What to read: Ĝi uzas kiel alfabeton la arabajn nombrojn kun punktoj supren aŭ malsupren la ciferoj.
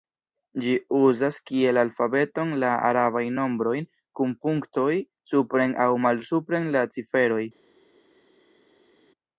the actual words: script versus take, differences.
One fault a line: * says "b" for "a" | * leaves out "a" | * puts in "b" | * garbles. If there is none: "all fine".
all fine